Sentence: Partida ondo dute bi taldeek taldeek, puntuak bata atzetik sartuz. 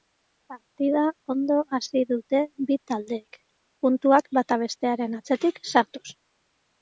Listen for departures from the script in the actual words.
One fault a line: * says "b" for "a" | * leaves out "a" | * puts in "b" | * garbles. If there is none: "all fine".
* puts in "hasi"
* leaves out "taldeek"
* puts in "bestearen"